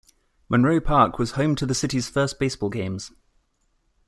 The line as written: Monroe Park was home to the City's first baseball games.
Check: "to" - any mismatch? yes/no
no